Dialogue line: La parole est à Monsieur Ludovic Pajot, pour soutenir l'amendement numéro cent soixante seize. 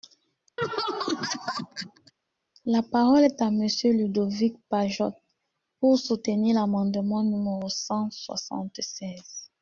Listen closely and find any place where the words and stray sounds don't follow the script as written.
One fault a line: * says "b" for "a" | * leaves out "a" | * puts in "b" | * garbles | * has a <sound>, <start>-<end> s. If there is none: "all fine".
* has a laugh, 0.6-2.1 s